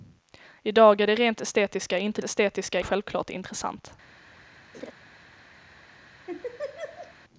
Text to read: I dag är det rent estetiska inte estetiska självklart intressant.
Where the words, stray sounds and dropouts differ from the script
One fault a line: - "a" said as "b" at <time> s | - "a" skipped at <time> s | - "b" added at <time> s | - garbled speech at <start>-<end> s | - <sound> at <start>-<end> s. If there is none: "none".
- laugh at 4.7-4.9 s
- laugh at 6.3-7.1 s